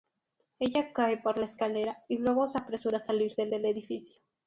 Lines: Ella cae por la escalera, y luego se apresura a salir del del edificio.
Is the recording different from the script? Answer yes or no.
no